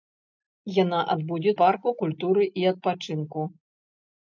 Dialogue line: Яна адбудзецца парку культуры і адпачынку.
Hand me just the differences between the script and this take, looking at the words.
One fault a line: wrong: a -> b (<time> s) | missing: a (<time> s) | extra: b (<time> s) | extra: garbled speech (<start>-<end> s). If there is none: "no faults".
no faults